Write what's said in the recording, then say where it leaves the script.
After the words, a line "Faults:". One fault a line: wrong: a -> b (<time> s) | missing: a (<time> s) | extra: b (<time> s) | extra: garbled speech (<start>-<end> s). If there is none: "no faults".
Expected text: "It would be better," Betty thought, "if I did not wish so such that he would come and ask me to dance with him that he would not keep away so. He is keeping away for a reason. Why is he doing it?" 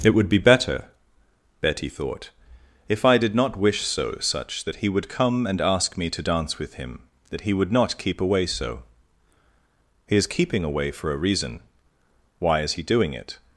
"It would be better," Betty thought, "if I did not wish so such that he would come and ask me to dance with him that he would not keep away so. He is keeping away for a reason. Why is he doing it?"
Faults:
no faults